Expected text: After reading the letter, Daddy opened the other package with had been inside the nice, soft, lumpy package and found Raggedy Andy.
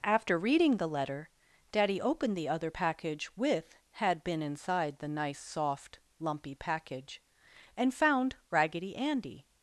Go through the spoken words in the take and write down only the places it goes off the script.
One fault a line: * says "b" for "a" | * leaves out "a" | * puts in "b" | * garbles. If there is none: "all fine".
all fine